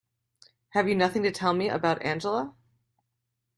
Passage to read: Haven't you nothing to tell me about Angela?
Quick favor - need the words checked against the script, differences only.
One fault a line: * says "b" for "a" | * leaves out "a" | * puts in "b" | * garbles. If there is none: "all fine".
* says "Have" for "Haven't"